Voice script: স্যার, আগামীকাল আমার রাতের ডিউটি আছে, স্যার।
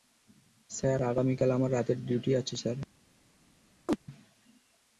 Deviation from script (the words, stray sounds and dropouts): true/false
true